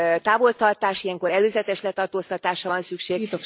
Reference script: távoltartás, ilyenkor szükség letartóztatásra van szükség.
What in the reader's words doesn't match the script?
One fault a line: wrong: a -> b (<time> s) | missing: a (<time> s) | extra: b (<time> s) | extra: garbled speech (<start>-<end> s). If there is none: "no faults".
wrong: szükség -> előzetes (1.3 s)